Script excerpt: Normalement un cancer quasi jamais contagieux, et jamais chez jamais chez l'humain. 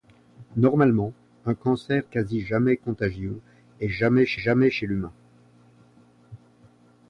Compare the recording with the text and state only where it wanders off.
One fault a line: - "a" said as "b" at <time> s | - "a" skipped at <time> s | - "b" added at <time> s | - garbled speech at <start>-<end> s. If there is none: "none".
none